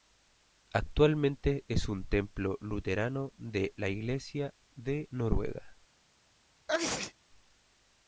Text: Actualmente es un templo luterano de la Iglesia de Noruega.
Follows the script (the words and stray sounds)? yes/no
no